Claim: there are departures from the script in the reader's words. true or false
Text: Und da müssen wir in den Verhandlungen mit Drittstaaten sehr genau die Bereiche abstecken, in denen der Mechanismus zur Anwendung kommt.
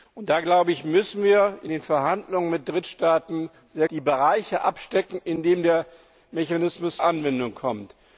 true